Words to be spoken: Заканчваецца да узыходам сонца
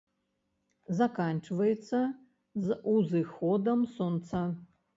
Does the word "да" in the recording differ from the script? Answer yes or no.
yes